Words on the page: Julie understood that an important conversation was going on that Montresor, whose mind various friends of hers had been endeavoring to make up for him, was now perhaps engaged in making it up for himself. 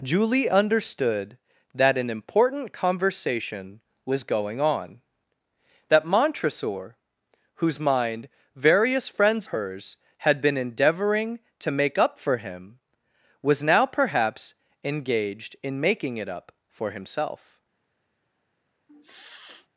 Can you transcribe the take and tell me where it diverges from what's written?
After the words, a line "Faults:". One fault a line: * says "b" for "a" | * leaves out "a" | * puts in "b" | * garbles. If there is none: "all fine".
Julie understood that an important conversation was going on that Montresor, whose mind various friends hers had been endeavoring to make up for him, was now perhaps engaged in making it up for himself.
Faults:
* leaves out "of"